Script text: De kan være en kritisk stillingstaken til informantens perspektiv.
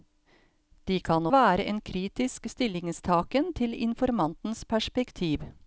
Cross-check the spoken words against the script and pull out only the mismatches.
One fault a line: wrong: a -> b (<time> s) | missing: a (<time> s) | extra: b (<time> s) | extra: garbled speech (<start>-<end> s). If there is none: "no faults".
no faults